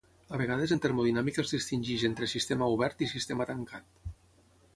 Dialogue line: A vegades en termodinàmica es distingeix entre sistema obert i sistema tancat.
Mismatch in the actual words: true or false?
false